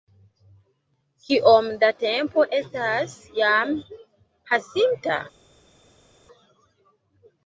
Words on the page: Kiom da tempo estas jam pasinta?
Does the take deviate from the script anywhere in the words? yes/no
no